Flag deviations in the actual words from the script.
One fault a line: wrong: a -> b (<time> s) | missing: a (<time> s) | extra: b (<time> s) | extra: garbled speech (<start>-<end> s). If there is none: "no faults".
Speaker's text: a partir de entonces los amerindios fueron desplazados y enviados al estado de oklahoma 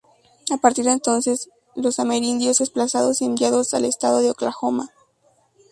missing: fueron (2.6 s)